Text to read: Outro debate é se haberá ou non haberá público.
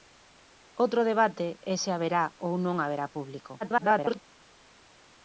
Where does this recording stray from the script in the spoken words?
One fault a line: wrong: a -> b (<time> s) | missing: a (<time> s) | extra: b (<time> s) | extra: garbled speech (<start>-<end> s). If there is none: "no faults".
extra: garbled speech (3.6-4.2 s)